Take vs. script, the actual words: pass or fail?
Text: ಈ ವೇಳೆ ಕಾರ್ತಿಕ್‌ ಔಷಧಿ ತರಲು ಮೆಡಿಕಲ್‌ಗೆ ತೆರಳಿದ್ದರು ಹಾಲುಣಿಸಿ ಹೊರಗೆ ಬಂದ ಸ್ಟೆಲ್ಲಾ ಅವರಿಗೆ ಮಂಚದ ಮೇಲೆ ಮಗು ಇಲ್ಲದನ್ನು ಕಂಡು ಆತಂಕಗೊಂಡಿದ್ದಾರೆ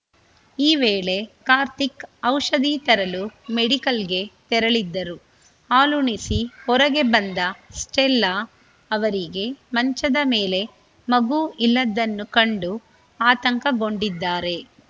pass